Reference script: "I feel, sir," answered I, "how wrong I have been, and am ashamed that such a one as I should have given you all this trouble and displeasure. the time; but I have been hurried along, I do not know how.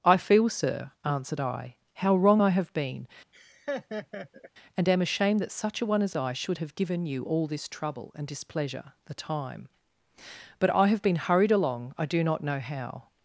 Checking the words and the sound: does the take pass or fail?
fail